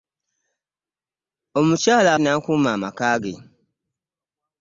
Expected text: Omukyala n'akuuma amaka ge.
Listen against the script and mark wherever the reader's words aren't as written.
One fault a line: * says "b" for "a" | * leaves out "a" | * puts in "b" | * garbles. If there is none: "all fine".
all fine